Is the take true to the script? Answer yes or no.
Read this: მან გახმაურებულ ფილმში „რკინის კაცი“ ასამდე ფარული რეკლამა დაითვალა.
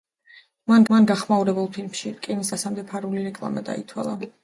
no